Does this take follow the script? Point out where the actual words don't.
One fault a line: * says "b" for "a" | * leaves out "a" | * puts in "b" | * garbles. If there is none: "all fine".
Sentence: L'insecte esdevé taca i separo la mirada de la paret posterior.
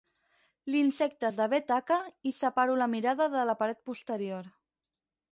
all fine